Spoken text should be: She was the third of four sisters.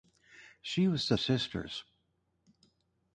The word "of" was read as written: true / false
false